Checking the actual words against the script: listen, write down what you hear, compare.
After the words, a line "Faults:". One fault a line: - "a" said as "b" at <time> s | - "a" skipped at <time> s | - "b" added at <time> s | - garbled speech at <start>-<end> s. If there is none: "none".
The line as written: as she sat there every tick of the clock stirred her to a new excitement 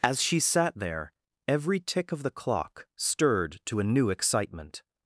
as she sat there every tick of the clock stirred to a new excitement
Faults:
- "her" skipped at 3.6 s